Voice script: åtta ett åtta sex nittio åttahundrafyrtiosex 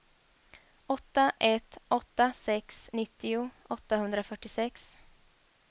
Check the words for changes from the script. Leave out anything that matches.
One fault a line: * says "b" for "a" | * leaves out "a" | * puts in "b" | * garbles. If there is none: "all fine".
all fine